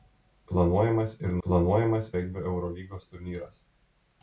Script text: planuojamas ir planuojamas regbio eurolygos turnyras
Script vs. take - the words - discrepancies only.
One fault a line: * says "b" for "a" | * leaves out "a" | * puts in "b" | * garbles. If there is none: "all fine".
all fine